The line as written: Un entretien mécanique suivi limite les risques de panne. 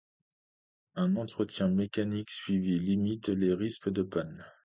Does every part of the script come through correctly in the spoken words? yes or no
yes